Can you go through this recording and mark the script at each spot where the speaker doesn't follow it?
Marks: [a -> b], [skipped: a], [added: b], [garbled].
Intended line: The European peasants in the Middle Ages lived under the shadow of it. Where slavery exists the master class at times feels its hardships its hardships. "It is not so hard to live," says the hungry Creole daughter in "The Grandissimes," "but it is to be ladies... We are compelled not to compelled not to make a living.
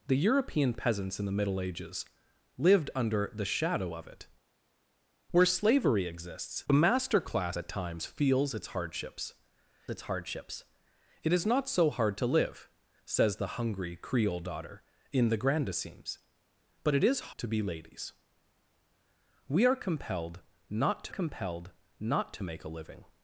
The European peasants in the Middle Ages lived under the shadow of it. Where slavery exists the master class at times feels its hardships its hardships. "It is not so hard to live," says the hungry Creole daughter in "The Grandissimes," "but it is to be ladies... We are compelled not to compelled not to make a living.